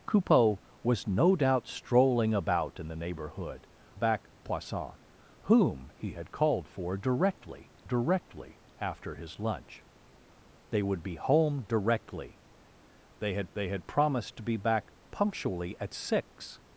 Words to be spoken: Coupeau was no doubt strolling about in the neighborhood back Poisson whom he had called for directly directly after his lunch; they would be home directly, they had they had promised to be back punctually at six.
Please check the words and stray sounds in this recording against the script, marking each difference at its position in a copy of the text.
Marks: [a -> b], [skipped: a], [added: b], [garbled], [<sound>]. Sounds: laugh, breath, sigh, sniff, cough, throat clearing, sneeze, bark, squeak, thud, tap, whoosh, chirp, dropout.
Coupeau was no doubt strolling about in the neighborhood back Poisson whom he had called for directly directly after his lunch; they would be home directly, they had they had promised to be back punctually at six.